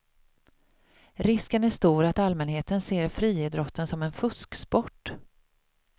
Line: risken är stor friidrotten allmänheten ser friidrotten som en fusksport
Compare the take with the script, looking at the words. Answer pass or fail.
fail